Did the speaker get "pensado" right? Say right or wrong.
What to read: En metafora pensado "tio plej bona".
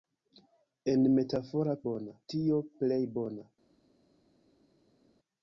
wrong